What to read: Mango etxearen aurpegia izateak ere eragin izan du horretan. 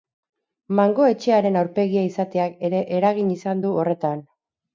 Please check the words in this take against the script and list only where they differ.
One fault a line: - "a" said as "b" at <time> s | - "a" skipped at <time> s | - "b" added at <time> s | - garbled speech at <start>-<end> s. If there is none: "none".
none